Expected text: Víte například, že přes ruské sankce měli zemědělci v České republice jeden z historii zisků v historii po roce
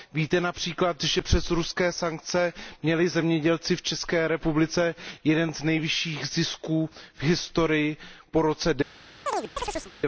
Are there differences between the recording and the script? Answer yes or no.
yes